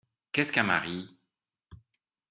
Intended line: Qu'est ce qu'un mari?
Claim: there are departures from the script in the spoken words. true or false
false